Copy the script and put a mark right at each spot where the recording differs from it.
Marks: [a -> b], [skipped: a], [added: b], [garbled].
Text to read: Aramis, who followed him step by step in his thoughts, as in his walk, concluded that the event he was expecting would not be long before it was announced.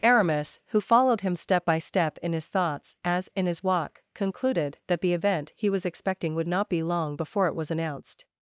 Aramis, who followed him step by step in his thoughts, as in his walk, concluded that the event he was expecting would not be long before it was announced.